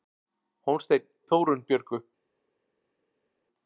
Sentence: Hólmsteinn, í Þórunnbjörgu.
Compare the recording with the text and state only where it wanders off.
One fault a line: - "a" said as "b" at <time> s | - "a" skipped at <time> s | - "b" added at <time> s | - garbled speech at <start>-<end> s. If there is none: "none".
none